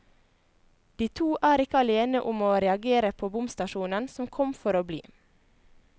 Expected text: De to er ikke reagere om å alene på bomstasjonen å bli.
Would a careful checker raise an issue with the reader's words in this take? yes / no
yes